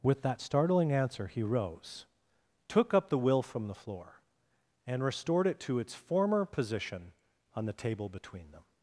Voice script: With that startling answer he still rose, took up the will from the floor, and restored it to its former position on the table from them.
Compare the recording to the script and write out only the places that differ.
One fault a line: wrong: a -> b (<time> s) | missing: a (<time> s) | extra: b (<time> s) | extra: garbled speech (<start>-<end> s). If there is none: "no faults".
missing: still (1.4 s)
wrong: from -> between (8.1 s)